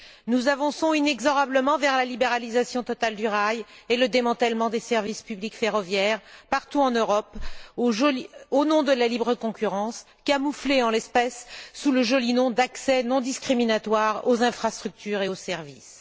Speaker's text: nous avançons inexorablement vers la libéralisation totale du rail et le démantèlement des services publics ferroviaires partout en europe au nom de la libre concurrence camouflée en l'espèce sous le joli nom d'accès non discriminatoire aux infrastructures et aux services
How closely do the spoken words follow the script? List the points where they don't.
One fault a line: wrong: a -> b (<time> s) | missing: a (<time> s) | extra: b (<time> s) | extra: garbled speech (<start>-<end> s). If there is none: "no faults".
no faults